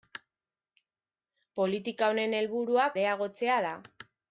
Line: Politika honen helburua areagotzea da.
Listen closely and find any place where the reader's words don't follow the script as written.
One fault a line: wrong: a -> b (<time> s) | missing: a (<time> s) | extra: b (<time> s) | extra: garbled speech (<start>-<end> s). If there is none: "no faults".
no faults